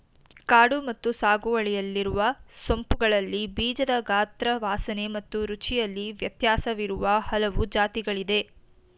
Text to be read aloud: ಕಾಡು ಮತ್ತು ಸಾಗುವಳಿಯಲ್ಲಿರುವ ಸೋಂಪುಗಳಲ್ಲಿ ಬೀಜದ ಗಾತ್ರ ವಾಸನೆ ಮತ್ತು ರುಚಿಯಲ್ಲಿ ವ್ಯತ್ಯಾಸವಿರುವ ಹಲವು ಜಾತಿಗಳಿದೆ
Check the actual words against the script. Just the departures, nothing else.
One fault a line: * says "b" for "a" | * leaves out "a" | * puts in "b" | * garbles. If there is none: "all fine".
all fine